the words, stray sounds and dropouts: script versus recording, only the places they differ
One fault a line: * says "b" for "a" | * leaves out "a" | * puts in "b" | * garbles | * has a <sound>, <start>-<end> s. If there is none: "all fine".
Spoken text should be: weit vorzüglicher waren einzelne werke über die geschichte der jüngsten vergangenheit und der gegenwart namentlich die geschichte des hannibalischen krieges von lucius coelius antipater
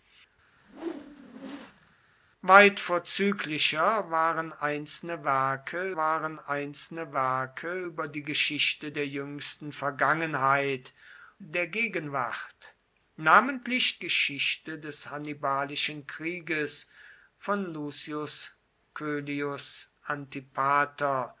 * has a whoosh, 0.6-1.9 s
* puts in "waren einzelne werke"
* leaves out "und"
* leaves out "die"